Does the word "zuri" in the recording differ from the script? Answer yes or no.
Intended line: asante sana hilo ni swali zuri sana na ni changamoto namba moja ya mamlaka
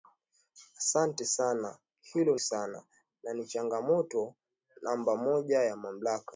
yes